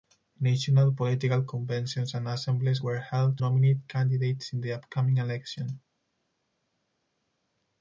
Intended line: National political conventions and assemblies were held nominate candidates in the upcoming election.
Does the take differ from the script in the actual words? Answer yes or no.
no